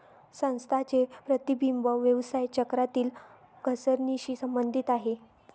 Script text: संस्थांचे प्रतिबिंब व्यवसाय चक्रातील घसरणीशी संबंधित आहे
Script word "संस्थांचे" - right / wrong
right